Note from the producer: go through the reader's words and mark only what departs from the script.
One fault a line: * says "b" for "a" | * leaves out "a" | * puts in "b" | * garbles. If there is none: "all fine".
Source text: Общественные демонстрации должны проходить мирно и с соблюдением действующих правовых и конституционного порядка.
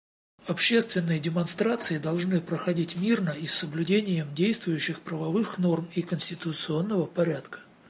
* puts in "норм"